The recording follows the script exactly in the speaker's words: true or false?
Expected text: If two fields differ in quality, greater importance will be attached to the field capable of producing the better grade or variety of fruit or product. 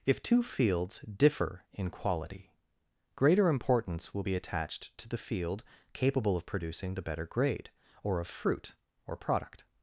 false